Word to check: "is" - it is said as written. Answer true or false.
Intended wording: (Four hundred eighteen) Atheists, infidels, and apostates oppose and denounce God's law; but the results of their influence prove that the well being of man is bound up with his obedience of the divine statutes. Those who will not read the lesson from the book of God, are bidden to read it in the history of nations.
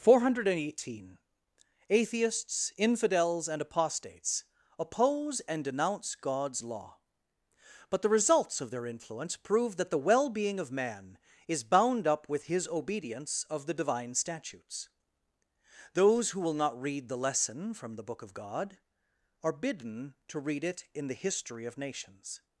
true